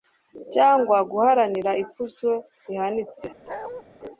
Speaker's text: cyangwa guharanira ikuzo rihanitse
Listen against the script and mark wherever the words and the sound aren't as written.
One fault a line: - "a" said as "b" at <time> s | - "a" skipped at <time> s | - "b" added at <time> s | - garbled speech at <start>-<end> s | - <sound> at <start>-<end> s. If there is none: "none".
- bark at 3.5-3.8 s